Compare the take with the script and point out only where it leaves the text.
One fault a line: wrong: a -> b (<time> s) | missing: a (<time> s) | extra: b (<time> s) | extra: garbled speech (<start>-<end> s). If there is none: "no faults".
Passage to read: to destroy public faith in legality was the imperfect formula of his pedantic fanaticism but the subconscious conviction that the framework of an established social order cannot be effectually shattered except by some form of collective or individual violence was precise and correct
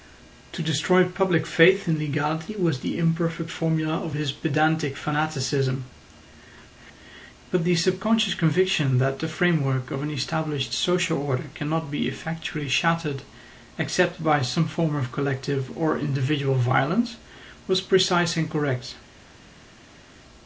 no faults